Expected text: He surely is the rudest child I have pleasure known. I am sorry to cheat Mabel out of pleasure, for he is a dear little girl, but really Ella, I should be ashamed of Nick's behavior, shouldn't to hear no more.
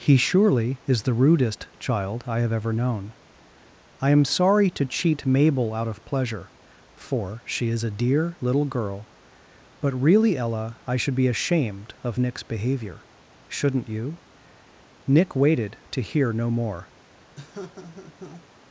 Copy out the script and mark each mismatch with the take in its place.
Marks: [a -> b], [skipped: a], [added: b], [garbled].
He surely is the rudest child I have [pleasure -> ever] known. I am sorry to cheat Mabel out of pleasure, for [he -> she] is a dear little girl, but really Ella, I should be ashamed of Nick's behavior, shouldn't [added: you Nick waited] to hear no more.